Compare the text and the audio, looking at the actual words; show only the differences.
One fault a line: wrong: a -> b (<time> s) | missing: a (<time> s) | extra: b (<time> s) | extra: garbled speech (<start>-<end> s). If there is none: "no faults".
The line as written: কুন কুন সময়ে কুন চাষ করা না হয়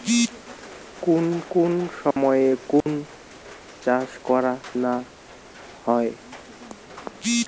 no faults